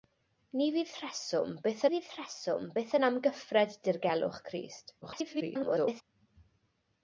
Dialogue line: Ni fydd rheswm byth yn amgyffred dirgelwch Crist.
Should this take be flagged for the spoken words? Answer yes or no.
yes